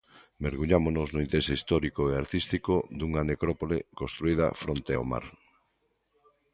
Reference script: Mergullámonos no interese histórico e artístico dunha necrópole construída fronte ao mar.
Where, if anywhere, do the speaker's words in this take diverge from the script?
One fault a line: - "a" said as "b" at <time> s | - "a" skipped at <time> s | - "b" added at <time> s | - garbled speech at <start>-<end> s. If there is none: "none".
none